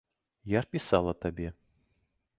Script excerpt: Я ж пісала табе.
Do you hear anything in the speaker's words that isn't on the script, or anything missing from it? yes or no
no